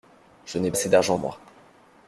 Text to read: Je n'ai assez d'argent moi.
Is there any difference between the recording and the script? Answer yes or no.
no